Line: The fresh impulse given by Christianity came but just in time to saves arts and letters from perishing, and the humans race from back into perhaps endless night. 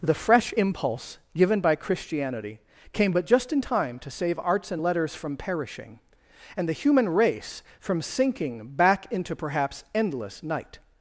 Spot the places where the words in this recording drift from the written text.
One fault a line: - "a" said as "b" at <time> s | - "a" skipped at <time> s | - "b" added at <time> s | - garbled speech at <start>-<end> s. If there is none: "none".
- "saves" said as "save" at 4.1 s
- "humans" said as "human" at 6.7 s
- "sinking" added at 8.0 s